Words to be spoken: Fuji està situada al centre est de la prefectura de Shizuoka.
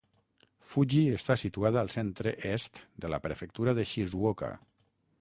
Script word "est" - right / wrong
right